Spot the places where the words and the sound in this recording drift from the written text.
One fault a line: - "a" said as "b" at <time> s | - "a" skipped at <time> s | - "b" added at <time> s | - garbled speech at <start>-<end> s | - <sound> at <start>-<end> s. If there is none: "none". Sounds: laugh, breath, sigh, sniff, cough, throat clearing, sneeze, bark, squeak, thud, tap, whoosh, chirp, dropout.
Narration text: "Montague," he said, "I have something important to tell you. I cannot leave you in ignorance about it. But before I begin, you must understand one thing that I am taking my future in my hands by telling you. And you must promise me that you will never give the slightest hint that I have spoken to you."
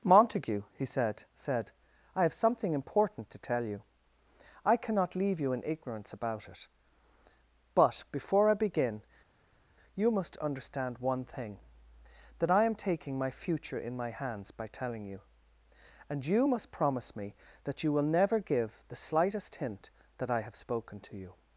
- "said" added at 1.4 s